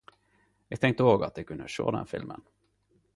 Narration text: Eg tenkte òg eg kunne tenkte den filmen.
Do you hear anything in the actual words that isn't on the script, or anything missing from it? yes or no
yes